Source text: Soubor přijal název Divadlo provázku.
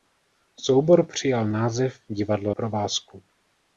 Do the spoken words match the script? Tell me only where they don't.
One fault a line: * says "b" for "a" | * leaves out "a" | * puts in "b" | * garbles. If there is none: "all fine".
all fine